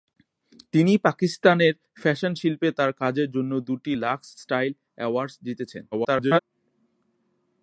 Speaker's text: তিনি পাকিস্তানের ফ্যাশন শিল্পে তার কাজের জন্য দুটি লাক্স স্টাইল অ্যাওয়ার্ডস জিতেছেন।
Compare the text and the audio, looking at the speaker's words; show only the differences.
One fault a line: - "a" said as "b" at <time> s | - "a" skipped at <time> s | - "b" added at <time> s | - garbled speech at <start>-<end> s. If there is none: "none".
- garbled speech at 5.9-6.4 s